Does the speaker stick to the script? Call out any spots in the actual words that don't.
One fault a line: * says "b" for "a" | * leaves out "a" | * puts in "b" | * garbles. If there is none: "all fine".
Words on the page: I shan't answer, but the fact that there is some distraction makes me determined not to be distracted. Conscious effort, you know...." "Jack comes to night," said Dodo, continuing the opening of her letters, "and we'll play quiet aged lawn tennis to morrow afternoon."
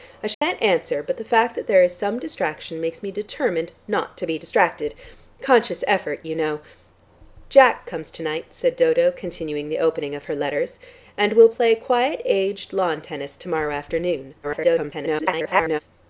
* garbles